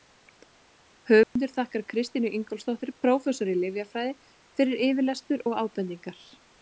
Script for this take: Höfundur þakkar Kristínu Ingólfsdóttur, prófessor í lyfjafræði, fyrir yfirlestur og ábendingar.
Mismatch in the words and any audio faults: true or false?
true